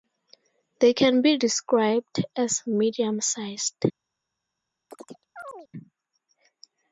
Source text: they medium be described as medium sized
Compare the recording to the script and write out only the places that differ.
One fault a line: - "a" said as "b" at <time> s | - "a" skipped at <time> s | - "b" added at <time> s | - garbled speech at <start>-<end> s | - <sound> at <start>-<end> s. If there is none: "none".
- "medium" said as "can" at 0.9 s
- chirp at 4.9-5.7 s